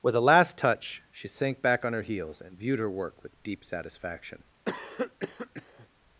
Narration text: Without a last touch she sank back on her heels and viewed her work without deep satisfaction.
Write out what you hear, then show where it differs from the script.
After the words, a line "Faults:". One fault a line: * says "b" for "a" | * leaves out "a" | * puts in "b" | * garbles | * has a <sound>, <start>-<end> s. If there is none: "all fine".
With a last touch she sank back on her heels and viewed her work with deep satisfaction.
Faults:
* says "With" for "Without"
* says "with" for "without"
* has a cough, 4.7-5.9 s